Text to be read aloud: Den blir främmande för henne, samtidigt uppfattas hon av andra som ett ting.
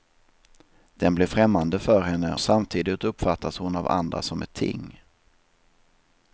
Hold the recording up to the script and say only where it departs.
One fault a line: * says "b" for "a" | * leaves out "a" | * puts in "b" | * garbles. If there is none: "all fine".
all fine